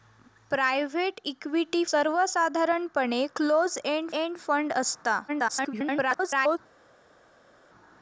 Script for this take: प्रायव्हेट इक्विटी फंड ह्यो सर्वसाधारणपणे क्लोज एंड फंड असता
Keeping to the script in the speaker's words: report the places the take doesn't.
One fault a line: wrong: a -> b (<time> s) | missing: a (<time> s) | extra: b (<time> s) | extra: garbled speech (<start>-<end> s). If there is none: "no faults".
missing: फंड ह्यो (1.8 s)
extra: एंड (4.1 s)
extra: garbled speech (5.3-6.6 s)